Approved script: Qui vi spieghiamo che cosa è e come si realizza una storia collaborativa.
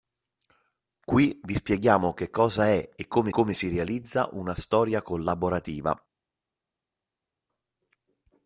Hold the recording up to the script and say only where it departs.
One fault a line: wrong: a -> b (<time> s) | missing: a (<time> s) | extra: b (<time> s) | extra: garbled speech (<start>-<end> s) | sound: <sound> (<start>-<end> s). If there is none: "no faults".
extra: come (3.3 s)